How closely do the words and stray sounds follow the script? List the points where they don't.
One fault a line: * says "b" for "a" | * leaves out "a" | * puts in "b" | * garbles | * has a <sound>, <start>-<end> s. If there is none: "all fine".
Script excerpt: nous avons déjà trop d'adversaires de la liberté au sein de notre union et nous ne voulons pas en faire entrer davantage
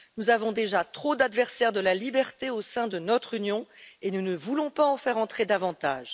all fine